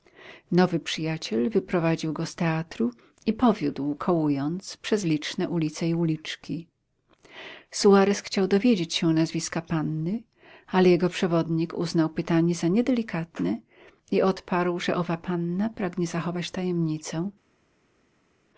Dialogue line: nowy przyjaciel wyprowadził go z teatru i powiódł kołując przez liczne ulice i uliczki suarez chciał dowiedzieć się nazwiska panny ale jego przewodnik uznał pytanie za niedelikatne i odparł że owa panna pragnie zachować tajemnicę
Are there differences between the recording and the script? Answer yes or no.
no